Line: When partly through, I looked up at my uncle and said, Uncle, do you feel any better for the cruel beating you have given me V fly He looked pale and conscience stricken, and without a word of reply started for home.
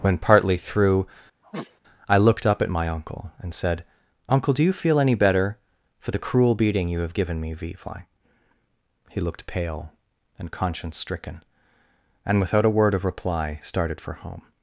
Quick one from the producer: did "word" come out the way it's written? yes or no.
yes